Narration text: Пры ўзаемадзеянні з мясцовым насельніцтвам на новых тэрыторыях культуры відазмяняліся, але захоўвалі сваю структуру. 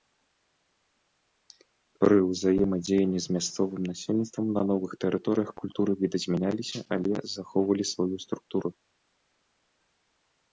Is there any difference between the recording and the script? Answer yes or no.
no